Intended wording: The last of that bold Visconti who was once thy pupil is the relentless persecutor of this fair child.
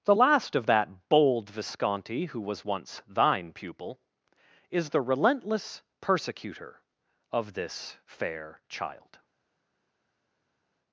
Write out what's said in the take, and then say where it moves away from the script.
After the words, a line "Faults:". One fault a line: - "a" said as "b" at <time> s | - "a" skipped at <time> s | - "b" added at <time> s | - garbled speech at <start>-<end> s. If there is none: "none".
The last of that bold Visconti who was once thine pupil is the relentless persecutor of this fair child.
Faults:
- "thy" said as "thine" at 3.1 s